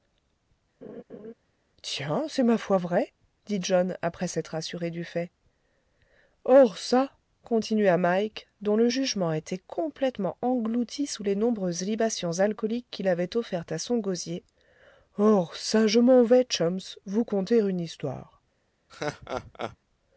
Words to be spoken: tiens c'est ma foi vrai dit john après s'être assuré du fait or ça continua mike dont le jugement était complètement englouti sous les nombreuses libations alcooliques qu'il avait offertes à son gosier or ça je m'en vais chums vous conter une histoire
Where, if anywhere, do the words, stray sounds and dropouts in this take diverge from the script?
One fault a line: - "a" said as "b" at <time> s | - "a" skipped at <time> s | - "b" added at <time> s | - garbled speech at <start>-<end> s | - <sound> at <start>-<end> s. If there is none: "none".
- laugh at 0.8-1.3 s
- laugh at 18.9-19.8 s